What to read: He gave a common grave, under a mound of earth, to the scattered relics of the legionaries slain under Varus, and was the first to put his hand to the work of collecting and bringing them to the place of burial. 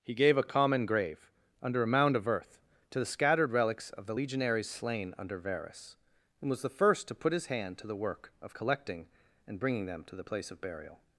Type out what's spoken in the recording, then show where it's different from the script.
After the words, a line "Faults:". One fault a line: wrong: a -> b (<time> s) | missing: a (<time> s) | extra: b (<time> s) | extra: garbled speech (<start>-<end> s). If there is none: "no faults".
He gave a common grave, under a mound of earth, to the scattered relics of the legionaries slain under Varus, and was the first to put his hand to the work of collecting and bringing them to the place of burial.
Faults:
no faults